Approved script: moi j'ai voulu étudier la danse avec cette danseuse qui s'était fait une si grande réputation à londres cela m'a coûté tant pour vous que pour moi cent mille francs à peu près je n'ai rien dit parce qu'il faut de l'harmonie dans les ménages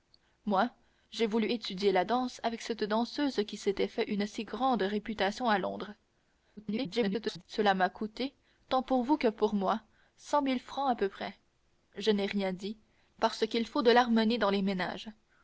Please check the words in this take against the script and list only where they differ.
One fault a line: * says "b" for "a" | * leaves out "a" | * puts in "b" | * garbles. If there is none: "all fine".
* garbles